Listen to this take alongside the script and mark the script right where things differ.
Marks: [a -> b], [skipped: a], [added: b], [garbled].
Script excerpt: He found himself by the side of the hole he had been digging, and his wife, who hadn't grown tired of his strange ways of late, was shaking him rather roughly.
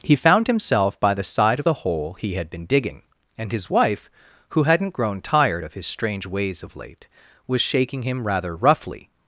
He found himself by the side of the hole he had been digging, and his wife, who hadn't grown tired of his strange ways of late, was shaking him rather roughly.